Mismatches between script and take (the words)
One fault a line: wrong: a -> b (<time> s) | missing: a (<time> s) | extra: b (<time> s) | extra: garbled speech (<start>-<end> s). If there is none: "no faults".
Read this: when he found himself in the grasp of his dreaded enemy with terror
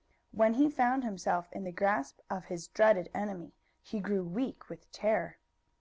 extra: he grew weak (3.8 s)